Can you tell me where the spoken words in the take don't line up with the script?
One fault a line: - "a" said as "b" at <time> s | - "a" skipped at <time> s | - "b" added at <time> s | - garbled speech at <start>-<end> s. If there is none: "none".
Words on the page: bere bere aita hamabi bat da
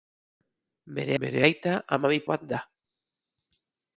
none